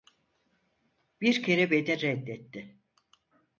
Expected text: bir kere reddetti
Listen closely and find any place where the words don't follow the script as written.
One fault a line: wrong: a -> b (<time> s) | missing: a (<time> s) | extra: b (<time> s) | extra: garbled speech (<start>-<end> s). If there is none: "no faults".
extra: beni (1.7 s)